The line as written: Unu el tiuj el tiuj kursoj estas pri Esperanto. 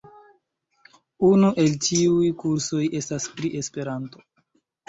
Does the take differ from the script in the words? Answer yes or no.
yes